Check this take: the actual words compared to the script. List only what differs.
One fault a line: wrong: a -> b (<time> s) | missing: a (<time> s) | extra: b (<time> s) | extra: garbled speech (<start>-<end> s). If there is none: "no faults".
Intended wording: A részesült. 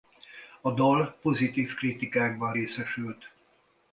extra: dal pozitív kritikákban (0.7 s)